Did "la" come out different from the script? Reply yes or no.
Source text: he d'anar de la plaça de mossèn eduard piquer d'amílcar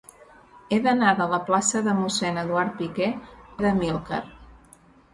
no